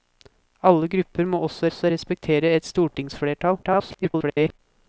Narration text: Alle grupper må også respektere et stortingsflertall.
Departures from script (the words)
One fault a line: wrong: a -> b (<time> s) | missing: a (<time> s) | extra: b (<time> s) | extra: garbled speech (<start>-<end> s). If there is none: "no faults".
extra: også (1.7 s)
extra: garbled speech (3.6-4.6 s)